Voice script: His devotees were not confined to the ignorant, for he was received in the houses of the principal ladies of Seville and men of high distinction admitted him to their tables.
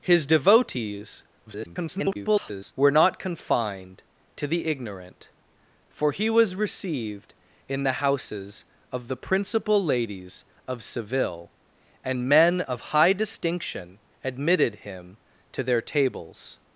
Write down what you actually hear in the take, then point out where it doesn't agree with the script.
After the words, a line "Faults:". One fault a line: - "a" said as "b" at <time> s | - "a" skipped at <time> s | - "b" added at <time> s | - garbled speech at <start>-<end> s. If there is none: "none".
His devotees [garbled] were not confined to the ignorant, for he was received in the houses of the principal ladies of Seville and men of high distinction admitted him to their tables.
Faults:
- garbled speech at 1.5-2.7 s